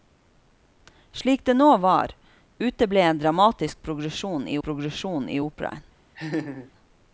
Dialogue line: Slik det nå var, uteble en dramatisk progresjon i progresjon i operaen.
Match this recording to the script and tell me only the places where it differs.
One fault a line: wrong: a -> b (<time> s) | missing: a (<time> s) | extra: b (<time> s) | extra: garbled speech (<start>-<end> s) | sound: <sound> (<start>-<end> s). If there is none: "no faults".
sound: laugh (6.2-6.7 s)